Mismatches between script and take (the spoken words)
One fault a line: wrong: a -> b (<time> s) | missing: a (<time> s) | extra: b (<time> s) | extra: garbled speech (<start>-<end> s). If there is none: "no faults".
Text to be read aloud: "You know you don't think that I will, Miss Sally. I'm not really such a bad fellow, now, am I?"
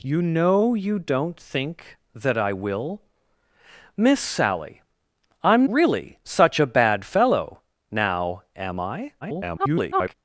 missing: not (5.7 s)
extra: garbled speech (9.2-10.1 s)